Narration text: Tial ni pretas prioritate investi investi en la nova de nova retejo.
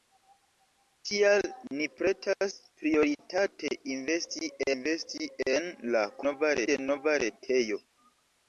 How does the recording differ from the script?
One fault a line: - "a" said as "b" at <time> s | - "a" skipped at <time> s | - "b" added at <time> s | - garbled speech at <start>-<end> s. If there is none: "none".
none